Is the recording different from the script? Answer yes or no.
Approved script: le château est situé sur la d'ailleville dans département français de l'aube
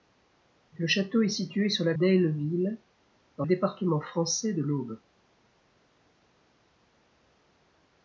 no